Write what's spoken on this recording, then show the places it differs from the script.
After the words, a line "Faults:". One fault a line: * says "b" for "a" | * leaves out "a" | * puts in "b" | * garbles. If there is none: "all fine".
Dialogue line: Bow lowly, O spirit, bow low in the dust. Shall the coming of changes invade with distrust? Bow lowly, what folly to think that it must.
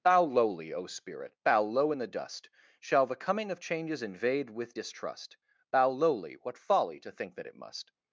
Bow lowly, O spirit, bow low in the dust. Shall the coming of changes invade with distrust? Bow lowly, what folly to think that it must.
Faults:
all fine